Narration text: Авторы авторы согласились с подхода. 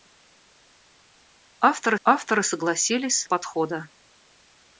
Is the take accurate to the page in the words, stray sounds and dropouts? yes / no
yes